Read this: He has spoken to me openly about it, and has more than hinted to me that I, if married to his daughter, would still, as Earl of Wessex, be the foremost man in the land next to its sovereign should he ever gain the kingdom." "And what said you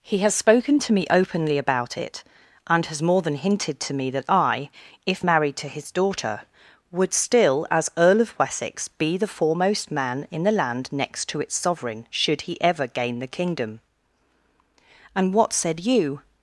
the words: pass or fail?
pass